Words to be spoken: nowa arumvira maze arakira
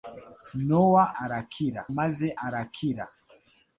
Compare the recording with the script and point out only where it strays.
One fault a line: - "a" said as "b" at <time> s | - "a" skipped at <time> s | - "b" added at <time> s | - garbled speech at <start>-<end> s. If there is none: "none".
- "arumvira" said as "arakira" at 1.2 s